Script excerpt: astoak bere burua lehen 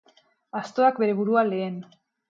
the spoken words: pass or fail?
pass